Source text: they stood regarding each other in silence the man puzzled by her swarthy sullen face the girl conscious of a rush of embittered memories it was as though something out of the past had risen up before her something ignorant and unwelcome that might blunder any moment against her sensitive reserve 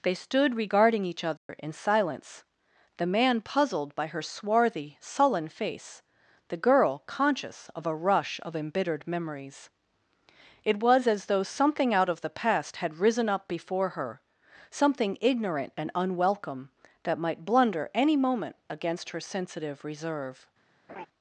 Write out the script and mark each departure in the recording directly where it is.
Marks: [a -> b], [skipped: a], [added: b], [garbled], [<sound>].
they stood regarding each other [dropout] in silence the man puzzled by her swarthy sullen face the girl conscious of a rush of embittered memories it was as though something out of the past had risen up before her something ignorant and unwelcome that might blunder any moment against her sensitive reserve [laugh]